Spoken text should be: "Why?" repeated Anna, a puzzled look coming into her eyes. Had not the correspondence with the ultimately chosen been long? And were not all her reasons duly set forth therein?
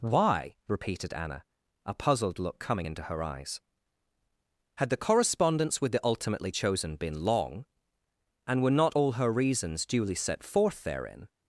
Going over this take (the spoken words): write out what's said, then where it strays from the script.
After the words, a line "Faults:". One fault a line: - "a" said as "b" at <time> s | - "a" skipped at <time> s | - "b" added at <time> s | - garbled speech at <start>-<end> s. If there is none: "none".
"Why?" repeated Anna, a puzzled look coming into her eyes. Had the correspondence with the ultimately chosen been long? And were not all her reasons duly set forth therein?
Faults:
- "not" skipped at 4.9 s